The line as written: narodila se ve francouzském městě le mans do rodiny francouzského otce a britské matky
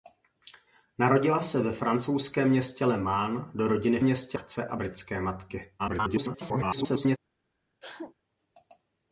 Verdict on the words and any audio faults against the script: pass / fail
fail